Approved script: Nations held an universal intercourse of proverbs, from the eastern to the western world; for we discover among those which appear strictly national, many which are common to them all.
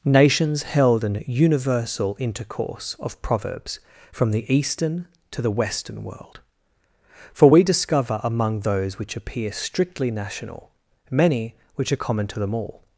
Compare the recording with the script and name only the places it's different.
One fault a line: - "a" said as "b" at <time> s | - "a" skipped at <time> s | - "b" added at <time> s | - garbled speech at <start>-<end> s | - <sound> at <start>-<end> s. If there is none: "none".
none